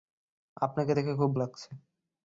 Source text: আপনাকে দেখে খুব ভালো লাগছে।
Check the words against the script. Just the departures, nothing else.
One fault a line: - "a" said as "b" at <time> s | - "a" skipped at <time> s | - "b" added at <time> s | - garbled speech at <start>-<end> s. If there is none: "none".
- "ভালো" skipped at 1.3 s